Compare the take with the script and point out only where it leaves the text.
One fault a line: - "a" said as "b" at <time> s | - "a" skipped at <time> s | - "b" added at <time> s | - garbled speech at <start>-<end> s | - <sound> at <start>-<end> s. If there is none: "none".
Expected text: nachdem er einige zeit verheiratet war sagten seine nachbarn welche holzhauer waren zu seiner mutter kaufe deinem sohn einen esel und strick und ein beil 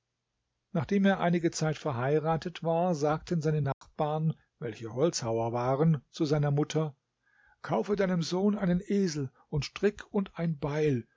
- dropout at 3.7-3.8 s